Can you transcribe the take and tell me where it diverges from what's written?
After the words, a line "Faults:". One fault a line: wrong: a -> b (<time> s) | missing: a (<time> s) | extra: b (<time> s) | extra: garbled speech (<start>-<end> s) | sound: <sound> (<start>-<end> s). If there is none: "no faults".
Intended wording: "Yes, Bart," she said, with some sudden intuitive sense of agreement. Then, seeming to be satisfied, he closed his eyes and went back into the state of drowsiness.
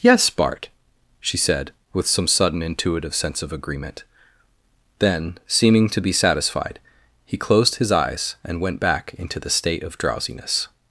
"Yes, Bart," she said, with some sudden intuitive sense of agreement. Then, seeming to be satisfied, he closed his eyes and went back into the state of drowsiness.
Faults:
no faults